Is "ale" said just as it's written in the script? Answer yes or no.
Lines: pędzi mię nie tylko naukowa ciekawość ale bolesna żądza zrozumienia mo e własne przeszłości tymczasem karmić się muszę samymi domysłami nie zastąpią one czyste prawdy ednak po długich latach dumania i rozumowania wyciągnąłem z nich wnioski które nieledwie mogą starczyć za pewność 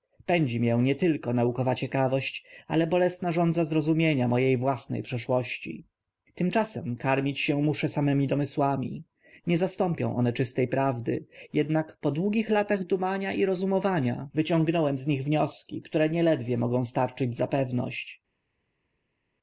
yes